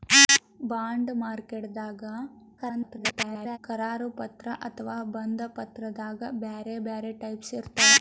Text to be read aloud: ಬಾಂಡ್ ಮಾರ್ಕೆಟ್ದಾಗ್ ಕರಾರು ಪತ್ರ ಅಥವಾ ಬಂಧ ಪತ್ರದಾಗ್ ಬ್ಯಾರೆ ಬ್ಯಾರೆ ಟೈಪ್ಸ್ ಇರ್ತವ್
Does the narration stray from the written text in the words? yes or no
yes